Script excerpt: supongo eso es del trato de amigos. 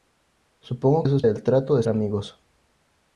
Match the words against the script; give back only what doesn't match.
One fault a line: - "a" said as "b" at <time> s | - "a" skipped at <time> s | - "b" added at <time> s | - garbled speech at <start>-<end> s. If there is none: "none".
none